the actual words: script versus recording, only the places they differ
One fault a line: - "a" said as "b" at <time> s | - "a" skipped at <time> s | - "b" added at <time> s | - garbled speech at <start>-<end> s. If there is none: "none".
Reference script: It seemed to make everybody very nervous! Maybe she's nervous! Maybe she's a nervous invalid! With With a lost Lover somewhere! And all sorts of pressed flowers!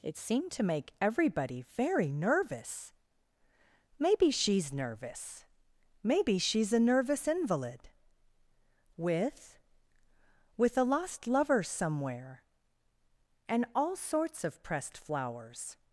none